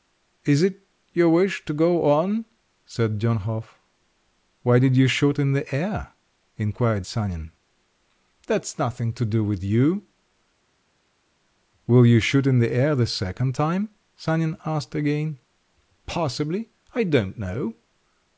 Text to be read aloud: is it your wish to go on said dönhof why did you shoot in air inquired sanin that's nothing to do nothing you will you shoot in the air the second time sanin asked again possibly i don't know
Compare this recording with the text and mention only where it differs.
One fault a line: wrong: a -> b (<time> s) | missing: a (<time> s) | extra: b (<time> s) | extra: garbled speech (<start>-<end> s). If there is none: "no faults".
extra: the (5.5 s)
wrong: nothing -> with (9.4 s)